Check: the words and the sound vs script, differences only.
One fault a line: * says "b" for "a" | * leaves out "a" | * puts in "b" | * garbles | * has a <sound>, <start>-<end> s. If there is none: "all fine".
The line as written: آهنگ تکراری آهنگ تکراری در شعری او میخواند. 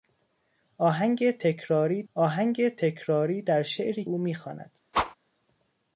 * has a whoosh, 4.9-5.2 s